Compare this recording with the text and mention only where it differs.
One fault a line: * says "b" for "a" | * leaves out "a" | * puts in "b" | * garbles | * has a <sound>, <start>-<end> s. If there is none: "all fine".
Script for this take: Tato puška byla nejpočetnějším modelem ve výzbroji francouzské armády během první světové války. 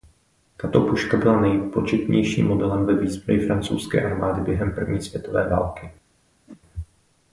* has a whoosh, 6.5-6.6 s